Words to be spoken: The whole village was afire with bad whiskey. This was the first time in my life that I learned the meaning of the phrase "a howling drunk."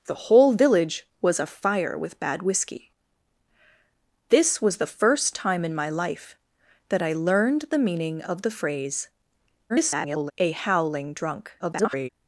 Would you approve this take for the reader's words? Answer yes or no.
no